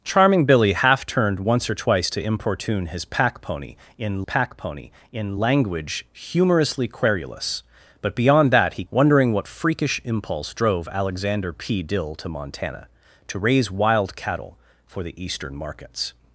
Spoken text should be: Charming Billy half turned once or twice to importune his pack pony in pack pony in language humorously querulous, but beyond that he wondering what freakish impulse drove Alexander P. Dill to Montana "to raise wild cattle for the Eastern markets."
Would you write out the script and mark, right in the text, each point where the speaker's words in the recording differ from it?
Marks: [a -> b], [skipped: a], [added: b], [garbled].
Charming Billy half turned once or twice to importune his pack pony in pack pony in language humorously querulous, but beyond that he wondering what freakish impulse drove Alexander P. Dill to Montana "to raise wild cattle for the Eastern markets."